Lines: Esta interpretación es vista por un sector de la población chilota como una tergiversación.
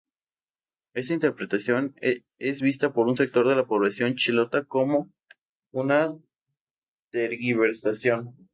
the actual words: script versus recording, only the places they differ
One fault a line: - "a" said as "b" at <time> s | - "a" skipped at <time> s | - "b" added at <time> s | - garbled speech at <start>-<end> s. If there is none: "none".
none